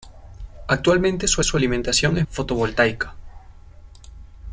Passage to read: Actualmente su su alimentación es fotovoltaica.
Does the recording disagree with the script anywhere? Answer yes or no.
no